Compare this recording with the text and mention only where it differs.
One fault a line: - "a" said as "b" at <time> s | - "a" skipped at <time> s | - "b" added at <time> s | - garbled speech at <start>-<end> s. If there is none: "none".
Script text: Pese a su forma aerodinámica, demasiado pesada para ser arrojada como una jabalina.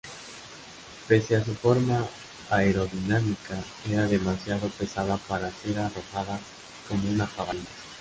- "era" added at 3.9 s